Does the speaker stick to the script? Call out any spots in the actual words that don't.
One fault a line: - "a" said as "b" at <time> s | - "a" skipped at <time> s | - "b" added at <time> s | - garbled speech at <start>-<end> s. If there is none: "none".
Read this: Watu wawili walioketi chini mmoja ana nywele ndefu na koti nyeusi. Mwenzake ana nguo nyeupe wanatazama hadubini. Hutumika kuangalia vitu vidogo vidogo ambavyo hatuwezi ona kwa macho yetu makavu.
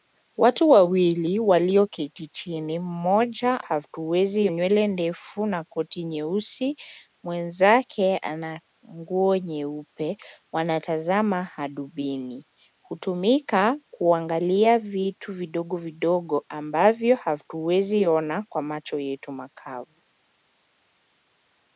- "ana" said as "hatuwezi" at 3.6 s